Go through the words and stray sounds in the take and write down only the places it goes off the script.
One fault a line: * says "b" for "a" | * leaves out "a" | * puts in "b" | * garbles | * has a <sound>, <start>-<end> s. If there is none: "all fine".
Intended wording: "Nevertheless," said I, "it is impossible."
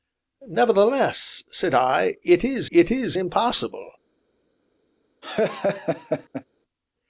* puts in "it is"
* has a laugh, 5.2-6.4 s